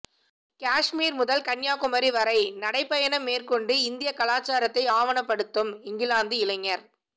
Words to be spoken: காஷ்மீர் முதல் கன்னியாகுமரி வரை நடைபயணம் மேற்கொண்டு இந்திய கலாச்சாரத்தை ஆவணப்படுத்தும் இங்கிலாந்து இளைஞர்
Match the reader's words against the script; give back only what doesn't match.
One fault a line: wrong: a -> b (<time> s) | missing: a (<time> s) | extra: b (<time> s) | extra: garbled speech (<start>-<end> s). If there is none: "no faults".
no faults